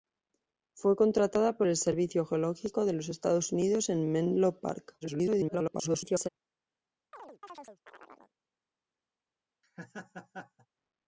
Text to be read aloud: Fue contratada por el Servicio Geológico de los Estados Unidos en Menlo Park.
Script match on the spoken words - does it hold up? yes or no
no